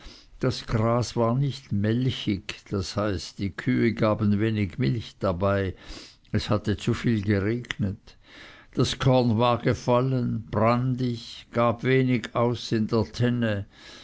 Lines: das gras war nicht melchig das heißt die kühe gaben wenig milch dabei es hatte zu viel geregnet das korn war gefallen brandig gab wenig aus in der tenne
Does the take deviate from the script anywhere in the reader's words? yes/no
no